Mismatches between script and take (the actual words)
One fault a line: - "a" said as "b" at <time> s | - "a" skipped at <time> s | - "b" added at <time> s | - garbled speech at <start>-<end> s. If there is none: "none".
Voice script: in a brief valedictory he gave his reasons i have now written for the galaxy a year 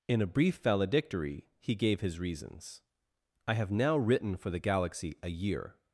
none